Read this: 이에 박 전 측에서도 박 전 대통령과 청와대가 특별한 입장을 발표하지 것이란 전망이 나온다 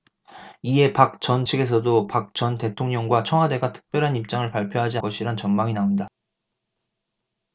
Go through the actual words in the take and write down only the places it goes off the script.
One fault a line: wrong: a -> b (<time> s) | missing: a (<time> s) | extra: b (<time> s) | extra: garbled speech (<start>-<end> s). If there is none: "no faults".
no faults